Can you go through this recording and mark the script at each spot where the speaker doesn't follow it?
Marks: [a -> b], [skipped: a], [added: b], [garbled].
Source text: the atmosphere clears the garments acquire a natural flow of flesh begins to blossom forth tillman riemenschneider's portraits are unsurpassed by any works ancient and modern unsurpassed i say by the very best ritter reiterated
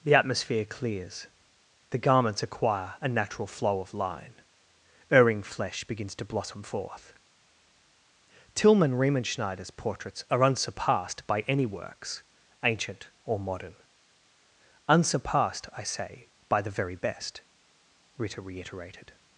the atmosphere clears the garments acquire a natural flow of [added: line erring] flesh begins to blossom forth tillman riemenschneider's portraits are unsurpassed by any works ancient [and -> or] modern unsurpassed i say by the very best ritter reiterated